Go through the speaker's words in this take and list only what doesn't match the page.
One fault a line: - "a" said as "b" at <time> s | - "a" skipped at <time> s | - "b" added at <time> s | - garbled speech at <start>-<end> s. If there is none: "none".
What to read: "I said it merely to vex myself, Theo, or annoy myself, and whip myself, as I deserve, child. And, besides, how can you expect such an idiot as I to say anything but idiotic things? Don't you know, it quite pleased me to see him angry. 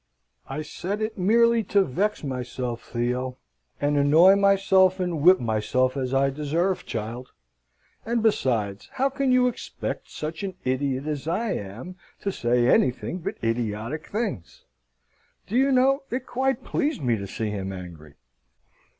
- "or" said as "and" at 3.8 s
- "am" added at 11.5 s
- "Don't" said as "Do" at 15.4 s